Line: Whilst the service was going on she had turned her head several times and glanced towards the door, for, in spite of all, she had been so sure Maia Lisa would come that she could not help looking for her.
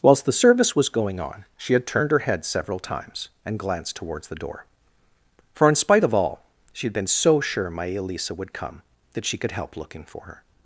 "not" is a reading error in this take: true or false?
true